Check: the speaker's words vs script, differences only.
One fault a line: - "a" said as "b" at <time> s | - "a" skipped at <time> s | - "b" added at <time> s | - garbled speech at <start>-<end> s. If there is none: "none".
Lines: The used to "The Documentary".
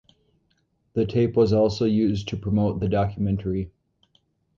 - "tape was also" added at 1.1 s
- "promote" added at 2.4 s